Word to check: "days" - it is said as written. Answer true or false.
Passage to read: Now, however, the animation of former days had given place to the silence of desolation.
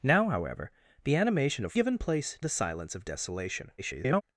false